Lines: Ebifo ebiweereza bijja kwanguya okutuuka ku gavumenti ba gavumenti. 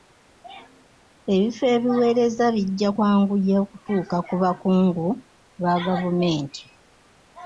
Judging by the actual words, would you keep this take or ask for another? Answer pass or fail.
fail